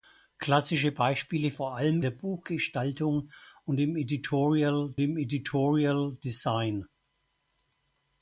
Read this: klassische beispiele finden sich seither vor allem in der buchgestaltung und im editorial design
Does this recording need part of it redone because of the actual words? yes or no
yes